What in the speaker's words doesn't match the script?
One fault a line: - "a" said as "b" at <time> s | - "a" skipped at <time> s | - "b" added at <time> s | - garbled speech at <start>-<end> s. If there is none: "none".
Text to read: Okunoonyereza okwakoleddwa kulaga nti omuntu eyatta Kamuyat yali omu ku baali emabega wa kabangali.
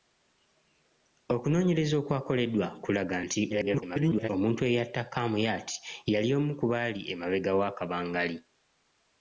- garbled speech at 3.5-4.3 s